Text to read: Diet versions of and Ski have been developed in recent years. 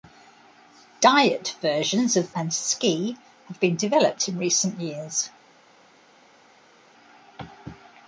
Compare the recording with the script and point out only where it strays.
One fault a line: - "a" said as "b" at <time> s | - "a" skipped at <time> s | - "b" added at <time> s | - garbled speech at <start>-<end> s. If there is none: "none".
none